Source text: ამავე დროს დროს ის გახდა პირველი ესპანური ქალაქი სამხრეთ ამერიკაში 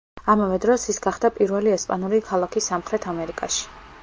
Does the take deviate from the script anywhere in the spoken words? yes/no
yes